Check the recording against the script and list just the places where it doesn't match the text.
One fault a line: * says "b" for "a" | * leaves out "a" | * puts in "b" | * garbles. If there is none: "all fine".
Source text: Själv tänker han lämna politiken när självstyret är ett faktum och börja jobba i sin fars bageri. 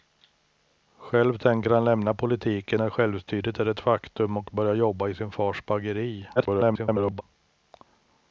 * garbles